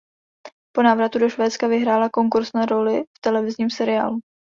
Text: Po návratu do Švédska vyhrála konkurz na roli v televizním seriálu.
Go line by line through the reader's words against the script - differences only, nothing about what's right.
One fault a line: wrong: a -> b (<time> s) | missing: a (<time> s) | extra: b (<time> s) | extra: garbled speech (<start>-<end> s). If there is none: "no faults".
no faults